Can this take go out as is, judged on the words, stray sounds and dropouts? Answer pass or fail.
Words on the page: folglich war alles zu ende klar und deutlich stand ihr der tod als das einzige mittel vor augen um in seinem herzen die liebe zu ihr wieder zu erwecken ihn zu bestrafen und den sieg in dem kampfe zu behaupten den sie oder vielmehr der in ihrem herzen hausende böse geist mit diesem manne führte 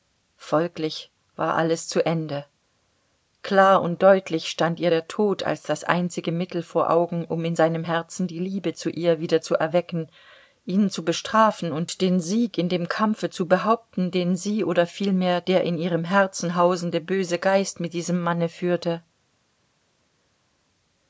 pass